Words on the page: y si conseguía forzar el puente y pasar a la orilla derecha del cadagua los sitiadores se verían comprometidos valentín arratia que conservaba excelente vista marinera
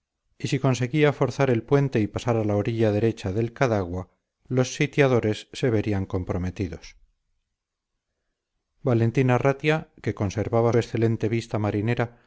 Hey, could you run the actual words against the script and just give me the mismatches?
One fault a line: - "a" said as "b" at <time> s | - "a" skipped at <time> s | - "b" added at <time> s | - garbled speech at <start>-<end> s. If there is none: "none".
none